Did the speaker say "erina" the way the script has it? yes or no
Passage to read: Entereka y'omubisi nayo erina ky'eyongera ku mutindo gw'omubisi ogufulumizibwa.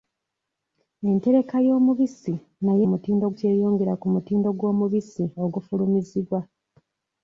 no